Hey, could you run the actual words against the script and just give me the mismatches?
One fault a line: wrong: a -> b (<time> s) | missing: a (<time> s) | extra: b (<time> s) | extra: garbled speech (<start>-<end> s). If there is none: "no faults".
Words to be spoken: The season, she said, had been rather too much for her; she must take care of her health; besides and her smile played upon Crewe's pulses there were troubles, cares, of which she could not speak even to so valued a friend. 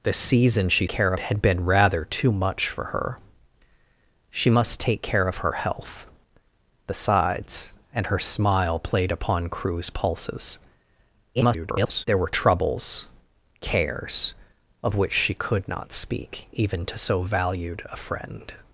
wrong: said -> care (0.9 s)
extra: garbled speech (11.3-12.1 s)